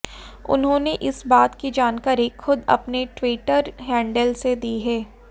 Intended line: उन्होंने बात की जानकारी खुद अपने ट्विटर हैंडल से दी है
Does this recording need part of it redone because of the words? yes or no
yes